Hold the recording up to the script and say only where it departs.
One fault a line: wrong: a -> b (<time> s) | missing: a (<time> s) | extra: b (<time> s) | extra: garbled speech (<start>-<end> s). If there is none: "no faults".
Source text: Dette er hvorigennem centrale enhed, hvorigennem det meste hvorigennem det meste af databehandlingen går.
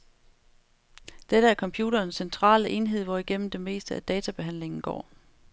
wrong: hvorigennem -> computerens (1.6 s)
missing: hvorigennem det meste (4.0 s)